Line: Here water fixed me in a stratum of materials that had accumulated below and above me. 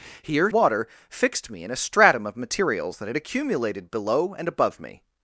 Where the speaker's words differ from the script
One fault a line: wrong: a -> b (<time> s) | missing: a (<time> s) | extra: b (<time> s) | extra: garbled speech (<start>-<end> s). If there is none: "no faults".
no faults